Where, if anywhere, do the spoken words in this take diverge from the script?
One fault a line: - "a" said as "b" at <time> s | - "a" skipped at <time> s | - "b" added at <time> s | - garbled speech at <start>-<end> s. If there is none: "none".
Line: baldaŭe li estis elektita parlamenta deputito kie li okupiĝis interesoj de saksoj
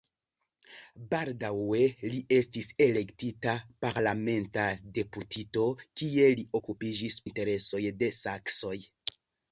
none